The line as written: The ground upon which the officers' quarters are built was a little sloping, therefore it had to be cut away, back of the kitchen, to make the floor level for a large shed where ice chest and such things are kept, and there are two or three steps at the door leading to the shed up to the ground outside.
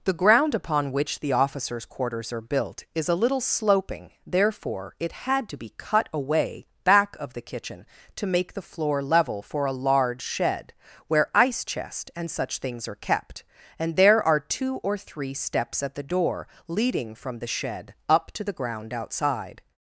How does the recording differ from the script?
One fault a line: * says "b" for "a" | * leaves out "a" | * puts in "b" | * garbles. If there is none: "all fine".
* says "is" for "was"
* says "from" for "to"